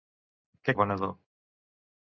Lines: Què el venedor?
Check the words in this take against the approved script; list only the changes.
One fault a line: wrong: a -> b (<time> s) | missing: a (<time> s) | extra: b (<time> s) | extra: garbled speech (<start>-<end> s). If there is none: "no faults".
no faults